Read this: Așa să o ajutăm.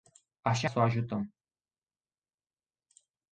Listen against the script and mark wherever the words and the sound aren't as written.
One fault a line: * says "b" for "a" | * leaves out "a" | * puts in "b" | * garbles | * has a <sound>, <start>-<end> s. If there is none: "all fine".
all fine